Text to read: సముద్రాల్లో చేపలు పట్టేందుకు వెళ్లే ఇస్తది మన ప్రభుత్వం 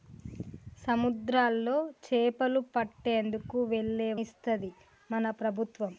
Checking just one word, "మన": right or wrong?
right